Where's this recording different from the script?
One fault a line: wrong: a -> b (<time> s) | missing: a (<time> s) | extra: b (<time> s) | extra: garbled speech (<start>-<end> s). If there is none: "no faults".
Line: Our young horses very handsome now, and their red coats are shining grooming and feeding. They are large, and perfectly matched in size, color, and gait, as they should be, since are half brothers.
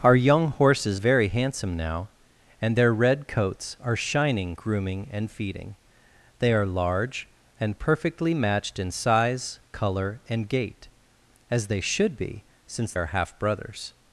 no faults